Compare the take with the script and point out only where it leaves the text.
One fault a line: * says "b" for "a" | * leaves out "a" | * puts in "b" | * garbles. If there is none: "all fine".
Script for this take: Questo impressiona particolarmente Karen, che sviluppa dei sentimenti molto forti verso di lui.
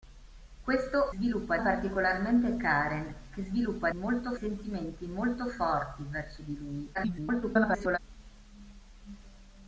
* says "sviluppa" for "impressiona"
* says "molto" for "dei"
* garbles